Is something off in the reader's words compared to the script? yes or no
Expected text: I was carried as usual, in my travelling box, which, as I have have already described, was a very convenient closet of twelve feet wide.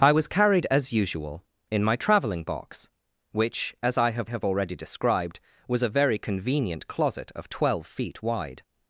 no